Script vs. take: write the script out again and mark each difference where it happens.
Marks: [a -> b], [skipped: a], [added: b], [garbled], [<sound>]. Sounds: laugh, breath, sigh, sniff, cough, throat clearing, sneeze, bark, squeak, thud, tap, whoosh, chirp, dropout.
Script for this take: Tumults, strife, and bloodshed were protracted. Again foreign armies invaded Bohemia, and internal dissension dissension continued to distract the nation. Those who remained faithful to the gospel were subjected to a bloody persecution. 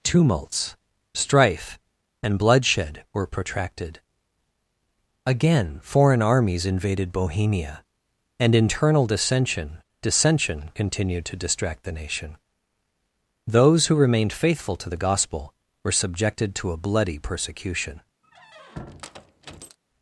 Tumults, strife, and bloodshed were protracted. Again foreign armies invaded Bohemia, and internal dissension dissension continued to distract the nation. Those who remained faithful to the gospel were subjected to a bloody persecution. [squeak]